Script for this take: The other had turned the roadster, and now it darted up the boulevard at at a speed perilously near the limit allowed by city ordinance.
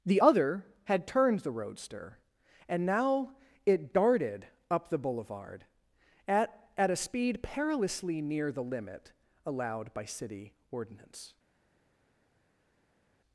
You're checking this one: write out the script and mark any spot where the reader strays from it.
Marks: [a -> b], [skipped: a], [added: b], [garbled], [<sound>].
The other had turned the roadster, and now it darted up the boulevard at at a speed perilously near the limit allowed by city ordinance.